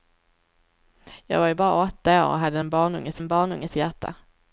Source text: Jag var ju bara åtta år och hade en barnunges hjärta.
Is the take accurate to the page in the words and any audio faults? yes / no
no